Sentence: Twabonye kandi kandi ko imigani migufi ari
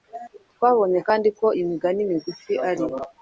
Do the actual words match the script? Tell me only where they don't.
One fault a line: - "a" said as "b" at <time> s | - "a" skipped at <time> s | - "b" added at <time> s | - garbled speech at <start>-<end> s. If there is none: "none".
- "kandi" skipped at 1.3 s